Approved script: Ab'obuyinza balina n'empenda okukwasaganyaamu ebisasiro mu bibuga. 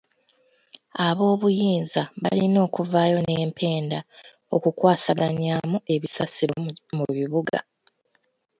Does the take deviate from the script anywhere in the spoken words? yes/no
yes